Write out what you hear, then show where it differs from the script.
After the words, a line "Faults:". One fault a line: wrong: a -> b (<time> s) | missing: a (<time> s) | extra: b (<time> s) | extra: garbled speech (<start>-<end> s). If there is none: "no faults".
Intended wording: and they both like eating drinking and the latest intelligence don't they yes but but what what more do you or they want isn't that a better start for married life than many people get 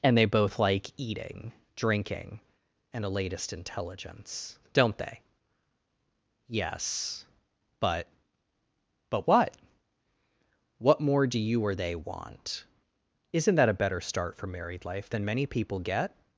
and they both like eating drinking and a latest intelligence don't they yes but but what what more do you or they want isn't that a better start for married life than many people get
Faults:
wrong: the -> a (3.0 s)